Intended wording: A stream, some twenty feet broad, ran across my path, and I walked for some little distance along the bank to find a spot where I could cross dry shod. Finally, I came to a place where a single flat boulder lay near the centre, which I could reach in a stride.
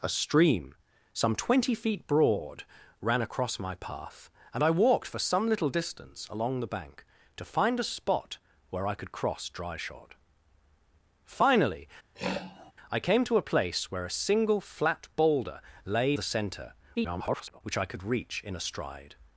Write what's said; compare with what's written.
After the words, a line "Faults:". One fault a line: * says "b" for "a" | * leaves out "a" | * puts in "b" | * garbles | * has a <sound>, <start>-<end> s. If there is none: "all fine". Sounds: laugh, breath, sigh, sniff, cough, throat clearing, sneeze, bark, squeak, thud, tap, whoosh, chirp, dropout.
A stream, some twenty feet broad, ran across my path, and I walked for some little distance along the bank to find a spot where I could cross dry shod. Finally, I came to a place where a single flat boulder lay the centre, [garbled] which I could reach in a stride.
Faults:
* has a throat clearing, 12.1-12.7 s
* leaves out "near"
* garbles